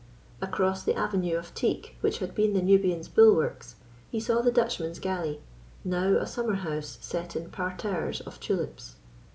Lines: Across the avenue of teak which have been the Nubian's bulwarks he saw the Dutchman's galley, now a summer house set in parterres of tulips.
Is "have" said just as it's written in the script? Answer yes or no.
no